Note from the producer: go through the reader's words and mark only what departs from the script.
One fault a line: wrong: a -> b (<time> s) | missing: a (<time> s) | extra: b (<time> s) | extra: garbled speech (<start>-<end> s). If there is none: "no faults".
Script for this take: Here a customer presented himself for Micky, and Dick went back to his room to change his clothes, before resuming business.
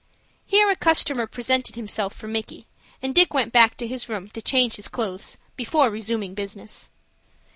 no faults